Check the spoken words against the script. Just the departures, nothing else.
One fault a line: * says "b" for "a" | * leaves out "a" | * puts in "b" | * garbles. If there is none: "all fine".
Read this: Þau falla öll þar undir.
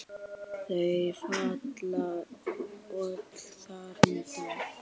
all fine